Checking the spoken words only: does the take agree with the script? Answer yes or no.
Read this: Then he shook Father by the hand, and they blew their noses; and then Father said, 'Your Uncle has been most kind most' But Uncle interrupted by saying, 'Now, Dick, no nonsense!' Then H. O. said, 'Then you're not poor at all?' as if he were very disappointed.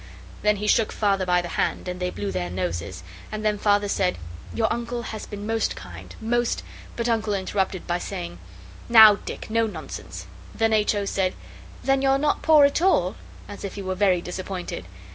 yes